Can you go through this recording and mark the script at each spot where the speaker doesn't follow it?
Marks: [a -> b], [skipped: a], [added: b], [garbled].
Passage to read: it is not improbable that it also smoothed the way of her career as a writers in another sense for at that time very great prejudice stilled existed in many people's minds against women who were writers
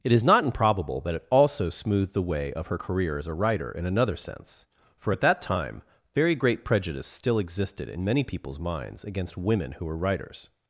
it is not improbable that it also smoothed the way of her career as a [writers -> writer] in another sense for at that time very great prejudice [stilled -> still] existed in many people's minds against women who were writers